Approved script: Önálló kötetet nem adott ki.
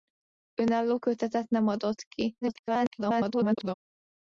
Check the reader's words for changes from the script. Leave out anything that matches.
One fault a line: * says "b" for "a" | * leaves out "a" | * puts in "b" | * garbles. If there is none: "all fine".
* garbles